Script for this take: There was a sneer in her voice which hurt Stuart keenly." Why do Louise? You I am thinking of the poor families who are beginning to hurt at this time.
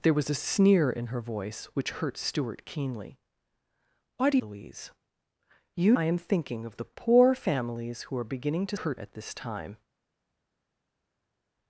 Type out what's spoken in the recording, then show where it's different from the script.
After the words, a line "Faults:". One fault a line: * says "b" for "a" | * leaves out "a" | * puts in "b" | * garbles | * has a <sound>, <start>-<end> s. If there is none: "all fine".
There was a sneer in her voice which hurt Stuart keenly." Why do Louise? You I am thinking of the poor families who are beginning to hurt at this time.
Faults:
all fine